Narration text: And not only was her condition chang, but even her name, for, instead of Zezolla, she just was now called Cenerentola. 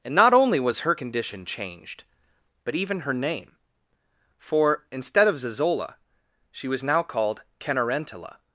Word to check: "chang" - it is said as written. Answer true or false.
false